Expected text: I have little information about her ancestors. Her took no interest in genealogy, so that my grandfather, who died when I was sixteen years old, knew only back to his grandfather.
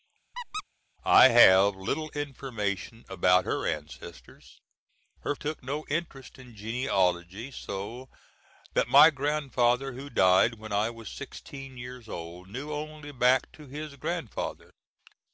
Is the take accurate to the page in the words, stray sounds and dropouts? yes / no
no